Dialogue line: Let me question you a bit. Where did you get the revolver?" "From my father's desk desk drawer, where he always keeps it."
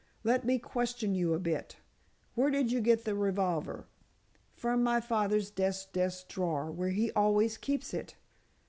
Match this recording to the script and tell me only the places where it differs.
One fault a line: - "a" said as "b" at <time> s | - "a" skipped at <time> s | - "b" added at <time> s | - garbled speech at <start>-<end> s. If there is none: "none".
none